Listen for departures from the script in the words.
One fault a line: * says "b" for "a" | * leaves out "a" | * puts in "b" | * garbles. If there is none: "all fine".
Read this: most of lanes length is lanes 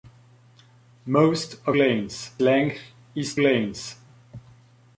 all fine